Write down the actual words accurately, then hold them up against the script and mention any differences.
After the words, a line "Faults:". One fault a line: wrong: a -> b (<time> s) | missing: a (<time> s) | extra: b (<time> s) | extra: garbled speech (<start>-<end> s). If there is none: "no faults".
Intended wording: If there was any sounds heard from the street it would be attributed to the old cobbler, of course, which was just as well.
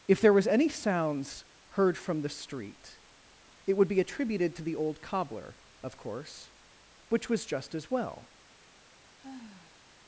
If there was any sounds heard from the street it would be attributed to the old cobbler, of course, which was just as well.
Faults:
no faults